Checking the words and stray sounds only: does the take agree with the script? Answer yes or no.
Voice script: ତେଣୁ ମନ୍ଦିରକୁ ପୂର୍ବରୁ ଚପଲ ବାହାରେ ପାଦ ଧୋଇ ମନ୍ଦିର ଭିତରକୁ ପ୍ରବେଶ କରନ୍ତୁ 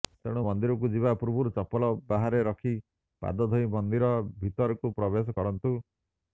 no